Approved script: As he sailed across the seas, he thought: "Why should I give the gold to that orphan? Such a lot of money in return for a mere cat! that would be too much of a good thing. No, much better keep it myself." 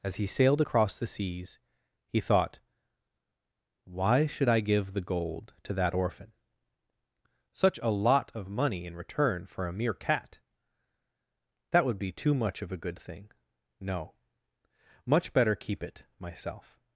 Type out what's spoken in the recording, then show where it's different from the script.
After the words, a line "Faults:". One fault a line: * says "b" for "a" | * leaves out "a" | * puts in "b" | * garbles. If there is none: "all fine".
As he sailed across the seas, he thought: "Why should I give the gold to that orphan? Such a lot of money in return for a mere cat! that would be too much of a good thing. No, much better keep it myself."
Faults:
all fine